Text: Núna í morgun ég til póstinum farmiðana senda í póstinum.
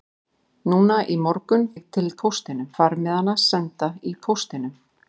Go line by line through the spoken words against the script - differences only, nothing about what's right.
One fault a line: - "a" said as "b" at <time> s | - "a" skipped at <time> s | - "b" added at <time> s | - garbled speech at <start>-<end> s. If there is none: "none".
none